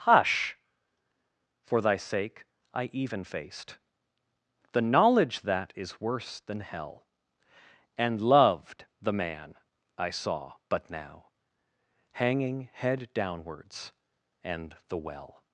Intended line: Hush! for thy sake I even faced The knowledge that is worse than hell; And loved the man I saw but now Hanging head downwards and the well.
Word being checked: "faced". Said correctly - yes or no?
yes